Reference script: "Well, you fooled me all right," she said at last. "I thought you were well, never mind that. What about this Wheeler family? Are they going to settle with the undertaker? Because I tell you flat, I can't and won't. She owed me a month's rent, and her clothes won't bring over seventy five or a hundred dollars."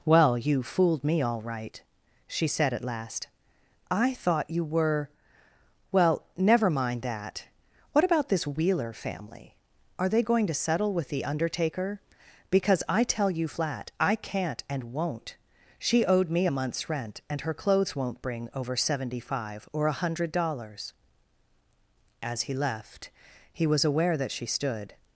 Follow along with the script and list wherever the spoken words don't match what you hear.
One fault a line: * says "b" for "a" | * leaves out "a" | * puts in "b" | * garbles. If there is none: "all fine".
* puts in "As he left he was aware that she stood"